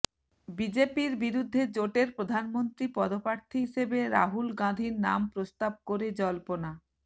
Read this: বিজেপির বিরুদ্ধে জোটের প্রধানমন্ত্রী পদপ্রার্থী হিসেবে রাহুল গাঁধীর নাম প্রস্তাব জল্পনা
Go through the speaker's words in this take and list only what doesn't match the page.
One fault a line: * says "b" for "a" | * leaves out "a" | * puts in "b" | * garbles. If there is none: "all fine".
* puts in "করে"